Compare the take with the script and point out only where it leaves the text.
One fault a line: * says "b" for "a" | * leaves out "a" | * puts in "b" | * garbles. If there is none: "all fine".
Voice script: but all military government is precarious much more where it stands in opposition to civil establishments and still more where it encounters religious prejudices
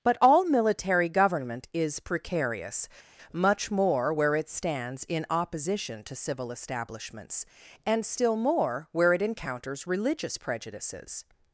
all fine